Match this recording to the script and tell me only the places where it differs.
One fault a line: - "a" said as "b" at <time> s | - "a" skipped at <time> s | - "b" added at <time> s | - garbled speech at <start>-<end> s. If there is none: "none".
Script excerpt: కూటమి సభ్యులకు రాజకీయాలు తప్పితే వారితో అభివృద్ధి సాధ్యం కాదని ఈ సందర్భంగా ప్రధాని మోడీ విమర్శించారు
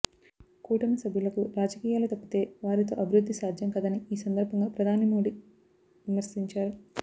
none